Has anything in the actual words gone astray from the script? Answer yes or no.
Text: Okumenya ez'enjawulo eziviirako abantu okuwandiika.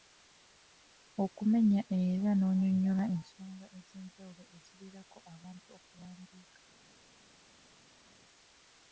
yes